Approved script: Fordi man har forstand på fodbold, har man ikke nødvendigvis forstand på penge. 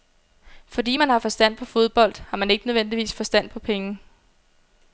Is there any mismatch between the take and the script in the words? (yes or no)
no